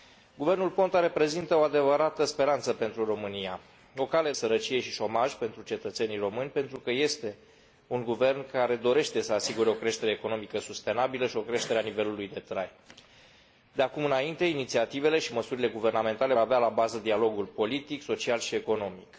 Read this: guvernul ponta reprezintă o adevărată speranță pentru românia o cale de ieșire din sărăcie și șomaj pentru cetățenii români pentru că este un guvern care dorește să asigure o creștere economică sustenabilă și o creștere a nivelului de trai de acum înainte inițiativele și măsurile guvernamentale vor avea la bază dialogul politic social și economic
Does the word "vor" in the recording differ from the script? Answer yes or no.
yes